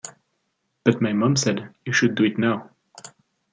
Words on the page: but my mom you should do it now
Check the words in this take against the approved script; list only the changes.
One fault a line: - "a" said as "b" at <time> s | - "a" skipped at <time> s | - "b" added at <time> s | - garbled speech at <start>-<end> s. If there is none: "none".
- "said" added at 1.4 s